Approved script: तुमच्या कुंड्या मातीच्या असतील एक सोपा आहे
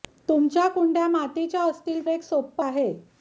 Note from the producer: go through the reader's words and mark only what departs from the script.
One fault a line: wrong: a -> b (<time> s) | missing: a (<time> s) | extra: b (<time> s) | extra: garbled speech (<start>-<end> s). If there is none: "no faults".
no faults